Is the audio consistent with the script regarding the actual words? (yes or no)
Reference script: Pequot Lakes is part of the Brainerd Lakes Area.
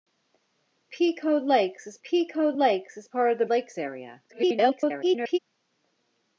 no